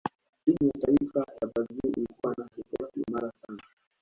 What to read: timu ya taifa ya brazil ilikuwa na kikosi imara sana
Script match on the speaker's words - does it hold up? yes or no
yes